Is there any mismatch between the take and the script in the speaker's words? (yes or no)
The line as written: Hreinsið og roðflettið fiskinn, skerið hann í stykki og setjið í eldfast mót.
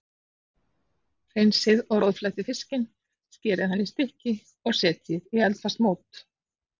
no